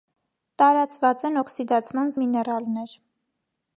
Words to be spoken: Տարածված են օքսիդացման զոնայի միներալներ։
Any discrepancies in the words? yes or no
yes